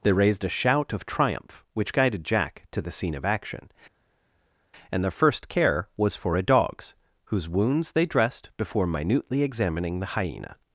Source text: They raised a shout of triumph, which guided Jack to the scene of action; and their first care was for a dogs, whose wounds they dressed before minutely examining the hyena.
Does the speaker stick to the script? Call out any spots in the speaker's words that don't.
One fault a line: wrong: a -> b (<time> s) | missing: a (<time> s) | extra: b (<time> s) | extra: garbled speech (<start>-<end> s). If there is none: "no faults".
no faults